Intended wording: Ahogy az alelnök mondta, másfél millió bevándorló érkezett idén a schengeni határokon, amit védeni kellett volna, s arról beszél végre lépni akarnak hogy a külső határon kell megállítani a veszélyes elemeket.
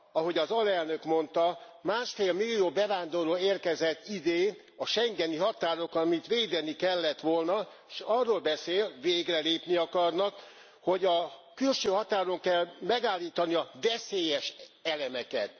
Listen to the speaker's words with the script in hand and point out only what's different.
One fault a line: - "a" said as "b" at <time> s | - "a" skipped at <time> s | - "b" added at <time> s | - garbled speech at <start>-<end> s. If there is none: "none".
none